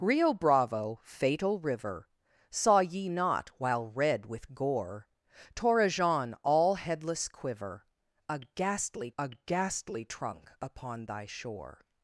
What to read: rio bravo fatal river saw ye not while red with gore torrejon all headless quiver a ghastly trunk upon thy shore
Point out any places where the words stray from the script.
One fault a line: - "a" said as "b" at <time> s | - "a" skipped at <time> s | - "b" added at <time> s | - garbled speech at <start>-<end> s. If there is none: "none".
- "a ghastly" added at 9.2 s